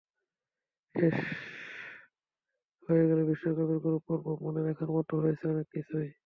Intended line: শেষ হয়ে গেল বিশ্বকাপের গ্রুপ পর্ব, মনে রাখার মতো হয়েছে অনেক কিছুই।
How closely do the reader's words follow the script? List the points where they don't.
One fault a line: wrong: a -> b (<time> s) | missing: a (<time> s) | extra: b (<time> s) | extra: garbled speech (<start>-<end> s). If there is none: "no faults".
no faults